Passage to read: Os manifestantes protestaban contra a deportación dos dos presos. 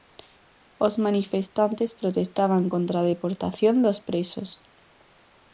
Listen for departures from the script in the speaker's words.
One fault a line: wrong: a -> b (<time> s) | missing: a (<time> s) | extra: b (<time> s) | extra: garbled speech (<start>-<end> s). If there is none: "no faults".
missing: dos (4.0 s)